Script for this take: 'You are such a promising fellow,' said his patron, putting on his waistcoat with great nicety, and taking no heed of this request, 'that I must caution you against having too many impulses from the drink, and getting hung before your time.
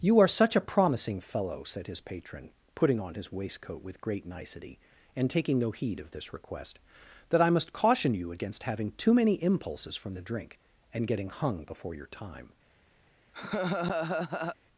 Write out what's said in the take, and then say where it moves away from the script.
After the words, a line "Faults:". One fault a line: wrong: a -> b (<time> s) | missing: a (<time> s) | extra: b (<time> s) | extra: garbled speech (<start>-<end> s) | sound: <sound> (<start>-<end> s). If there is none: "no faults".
'You are such a promising fellow,' said his patron, putting on his waistcoat with great nicety, and taking no heed of this request, 'that I must caution you against having too many impulses from the drink, and getting hung before your time.
Faults:
sound: laugh (13.3-14.6 s)